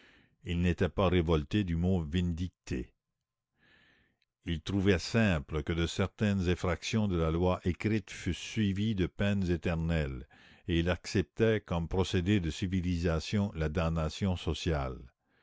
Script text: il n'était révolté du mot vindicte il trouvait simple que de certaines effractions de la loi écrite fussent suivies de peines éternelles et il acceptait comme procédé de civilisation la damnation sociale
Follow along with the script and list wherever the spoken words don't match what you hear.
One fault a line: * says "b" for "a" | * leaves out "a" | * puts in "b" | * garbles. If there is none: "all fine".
* puts in "pas"